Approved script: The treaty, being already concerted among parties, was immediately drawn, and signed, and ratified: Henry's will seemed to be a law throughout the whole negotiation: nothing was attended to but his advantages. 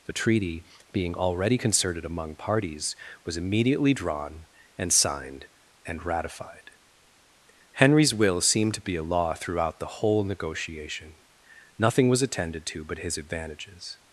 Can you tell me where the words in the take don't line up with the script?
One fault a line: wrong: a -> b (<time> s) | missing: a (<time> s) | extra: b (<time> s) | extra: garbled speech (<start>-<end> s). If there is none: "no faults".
no faults